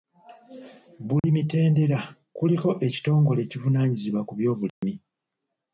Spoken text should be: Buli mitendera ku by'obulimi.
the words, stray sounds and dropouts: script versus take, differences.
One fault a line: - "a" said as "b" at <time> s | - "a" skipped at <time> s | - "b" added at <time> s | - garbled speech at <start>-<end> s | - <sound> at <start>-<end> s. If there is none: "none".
- dropout at 1.2-1.2 s
- "kuliko ekitongole ekivunaanyizibwa" added at 2.4 s
- dropout at 4.7-4.8 s